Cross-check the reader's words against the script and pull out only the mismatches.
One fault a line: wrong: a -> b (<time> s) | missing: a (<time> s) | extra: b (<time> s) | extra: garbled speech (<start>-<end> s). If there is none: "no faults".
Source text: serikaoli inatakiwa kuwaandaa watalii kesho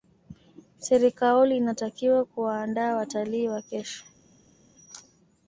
extra: wa (3.5 s)